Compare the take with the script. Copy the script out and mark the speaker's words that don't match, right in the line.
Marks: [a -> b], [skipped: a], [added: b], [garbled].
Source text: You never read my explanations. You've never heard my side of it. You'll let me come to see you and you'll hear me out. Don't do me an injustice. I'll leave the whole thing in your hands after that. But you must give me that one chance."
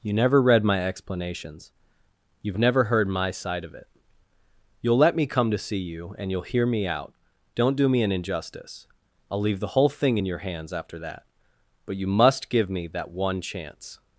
You never read my explanations. You've never heard my side of it. You'll let me come to see you and you'll hear me out. Don't do me an injustice. I'll leave the whole thing in your hands after that. But you must give me that one chance."